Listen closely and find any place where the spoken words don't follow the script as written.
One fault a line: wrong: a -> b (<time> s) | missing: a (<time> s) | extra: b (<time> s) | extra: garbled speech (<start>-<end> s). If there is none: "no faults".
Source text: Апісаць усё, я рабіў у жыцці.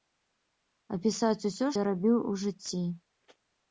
no faults